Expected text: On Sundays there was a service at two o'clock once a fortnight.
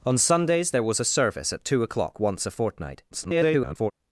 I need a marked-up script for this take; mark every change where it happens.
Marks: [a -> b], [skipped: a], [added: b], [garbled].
On Sundays there was a service at two o'clock once a fortnight. [garbled]